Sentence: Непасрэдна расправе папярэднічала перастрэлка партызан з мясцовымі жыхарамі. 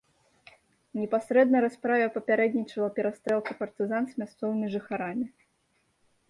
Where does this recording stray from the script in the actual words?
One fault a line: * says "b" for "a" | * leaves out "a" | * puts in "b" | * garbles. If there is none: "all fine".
all fine